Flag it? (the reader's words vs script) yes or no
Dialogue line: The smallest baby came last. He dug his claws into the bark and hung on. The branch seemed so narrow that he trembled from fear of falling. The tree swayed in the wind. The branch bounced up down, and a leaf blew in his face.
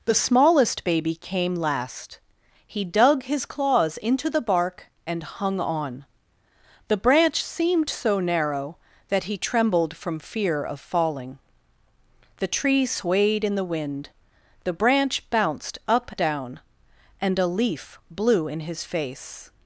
no